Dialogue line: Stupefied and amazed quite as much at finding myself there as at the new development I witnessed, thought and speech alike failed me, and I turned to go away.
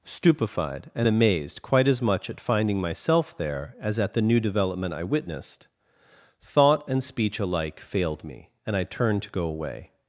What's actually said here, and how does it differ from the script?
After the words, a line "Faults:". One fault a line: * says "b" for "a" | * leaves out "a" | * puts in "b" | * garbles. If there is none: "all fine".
Stupefied and amazed quite as much at finding myself there as at the new development I witnessed, thought and speech alike failed me, and I turned to go away.
Faults:
all fine